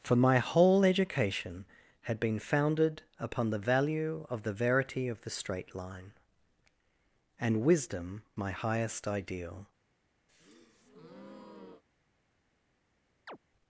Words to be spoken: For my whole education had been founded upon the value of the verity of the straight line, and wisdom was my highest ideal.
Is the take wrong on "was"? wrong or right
wrong